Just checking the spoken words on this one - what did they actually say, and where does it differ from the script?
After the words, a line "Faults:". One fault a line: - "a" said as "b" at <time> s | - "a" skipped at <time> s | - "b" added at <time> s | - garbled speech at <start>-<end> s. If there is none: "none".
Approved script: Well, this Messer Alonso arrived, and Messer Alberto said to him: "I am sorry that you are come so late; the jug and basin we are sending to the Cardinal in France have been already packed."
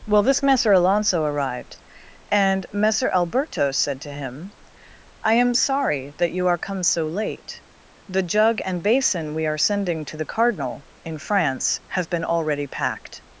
Well, this Messer Alonso arrived, and Messer Alberto said to him: "I am sorry that you are come so late; the jug and basin we are sending to the Cardinal in France have been already packed."
Faults:
none